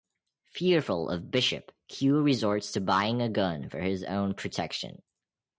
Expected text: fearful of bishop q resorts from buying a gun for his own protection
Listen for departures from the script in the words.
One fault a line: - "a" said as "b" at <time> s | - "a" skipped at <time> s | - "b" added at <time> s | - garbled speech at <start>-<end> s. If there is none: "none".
- "from" said as "to" at 2.7 s